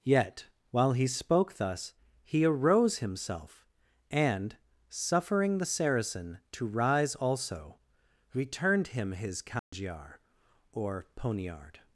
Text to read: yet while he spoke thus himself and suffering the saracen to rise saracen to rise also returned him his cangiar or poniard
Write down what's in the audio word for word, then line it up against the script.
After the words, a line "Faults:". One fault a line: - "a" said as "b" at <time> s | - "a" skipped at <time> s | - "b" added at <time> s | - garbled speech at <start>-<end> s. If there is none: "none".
yet while he spoke thus he arose himself and suffering the saracen to rise also returned him his cangiar or poniard
Faults:
- "he arose" added at 2.2 s
- "saracen to rise" skipped at 7.1 s